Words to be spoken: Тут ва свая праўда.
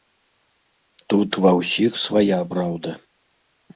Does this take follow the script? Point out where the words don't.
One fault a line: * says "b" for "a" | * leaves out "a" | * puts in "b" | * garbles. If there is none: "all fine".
* puts in "ўсіх"